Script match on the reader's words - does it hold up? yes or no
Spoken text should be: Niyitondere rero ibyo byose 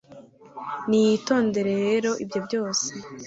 yes